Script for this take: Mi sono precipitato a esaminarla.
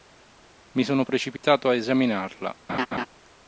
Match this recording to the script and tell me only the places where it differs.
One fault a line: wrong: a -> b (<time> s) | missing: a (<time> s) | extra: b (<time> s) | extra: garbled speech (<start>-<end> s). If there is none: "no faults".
no faults